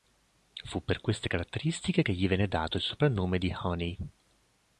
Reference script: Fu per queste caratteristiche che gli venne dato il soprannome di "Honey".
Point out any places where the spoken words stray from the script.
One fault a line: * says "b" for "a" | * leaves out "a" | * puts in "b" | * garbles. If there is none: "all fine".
all fine